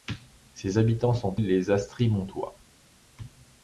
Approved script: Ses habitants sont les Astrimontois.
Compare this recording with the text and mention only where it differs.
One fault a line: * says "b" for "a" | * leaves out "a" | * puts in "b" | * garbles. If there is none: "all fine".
all fine